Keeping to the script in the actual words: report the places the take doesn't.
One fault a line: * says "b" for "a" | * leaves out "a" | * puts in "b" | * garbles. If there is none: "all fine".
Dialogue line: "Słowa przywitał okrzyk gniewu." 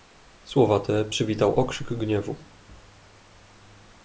* puts in "te"